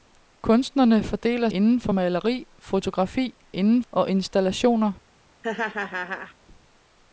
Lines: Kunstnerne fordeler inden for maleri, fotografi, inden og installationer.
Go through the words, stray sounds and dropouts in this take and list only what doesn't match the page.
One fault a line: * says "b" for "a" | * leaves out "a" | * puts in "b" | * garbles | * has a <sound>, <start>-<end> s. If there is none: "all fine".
* has a laugh, 5.4-6.3 s